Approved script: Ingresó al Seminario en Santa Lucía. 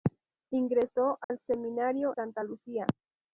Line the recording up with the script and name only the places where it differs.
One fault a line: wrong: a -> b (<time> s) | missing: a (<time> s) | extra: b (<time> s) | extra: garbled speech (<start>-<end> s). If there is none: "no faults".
missing: en (2.1 s)